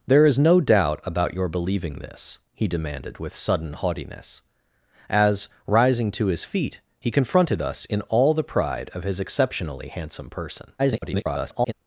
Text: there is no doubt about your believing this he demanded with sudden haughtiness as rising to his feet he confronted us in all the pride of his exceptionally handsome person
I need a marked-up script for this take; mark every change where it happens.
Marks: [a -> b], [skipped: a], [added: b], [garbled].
there is no doubt about your believing this he demanded with sudden haughtiness as rising to his feet he confronted us in all the pride of his exceptionally handsome person [garbled]